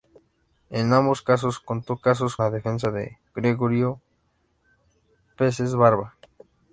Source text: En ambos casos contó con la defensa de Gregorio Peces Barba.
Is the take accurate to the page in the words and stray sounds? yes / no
no